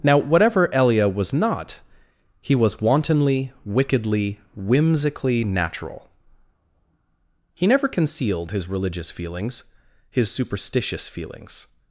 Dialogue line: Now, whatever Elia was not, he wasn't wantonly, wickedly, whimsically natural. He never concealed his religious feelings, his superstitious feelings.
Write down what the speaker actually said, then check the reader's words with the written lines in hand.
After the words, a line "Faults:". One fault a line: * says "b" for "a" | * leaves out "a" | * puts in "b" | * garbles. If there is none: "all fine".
Now, whatever Elia was not, he was wantonly, wickedly, whimsically natural. He never concealed his religious feelings, his superstitious feelings.
Faults:
* says "was" for "wasn't"